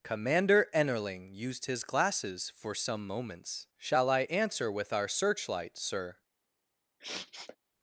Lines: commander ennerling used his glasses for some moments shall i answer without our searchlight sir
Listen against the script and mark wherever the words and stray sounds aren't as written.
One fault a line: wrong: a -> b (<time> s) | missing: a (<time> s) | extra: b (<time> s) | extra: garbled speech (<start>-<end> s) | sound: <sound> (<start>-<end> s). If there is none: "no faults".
wrong: without -> with (4.7 s)
sound: sniff (7.0-7.6 s)